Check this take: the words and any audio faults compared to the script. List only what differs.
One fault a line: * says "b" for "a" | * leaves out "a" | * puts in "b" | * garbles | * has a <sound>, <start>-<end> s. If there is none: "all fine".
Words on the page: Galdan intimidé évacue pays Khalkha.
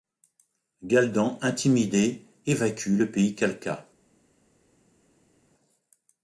* puts in "le"